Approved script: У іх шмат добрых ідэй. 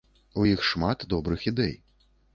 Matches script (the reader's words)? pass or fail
pass